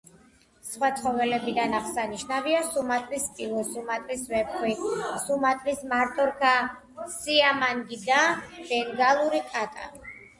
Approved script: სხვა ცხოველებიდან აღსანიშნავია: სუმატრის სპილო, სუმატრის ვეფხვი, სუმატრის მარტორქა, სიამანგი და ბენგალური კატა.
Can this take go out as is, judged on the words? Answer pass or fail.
pass